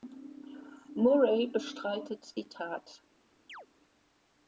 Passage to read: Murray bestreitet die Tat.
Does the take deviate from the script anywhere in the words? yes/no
no